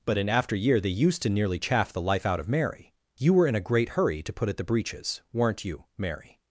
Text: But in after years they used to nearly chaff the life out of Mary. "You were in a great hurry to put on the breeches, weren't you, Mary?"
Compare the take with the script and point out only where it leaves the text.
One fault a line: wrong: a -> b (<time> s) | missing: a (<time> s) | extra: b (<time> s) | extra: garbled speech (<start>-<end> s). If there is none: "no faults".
wrong: years -> year (0.6 s)
wrong: on -> at (4.5 s)